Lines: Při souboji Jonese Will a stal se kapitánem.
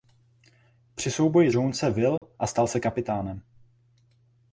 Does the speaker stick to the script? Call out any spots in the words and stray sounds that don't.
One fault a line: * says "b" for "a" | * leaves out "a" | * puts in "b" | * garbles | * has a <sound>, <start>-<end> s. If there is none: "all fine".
* has a dropout, 2.2-2.2 s